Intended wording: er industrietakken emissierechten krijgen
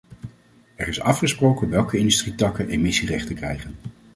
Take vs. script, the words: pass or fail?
fail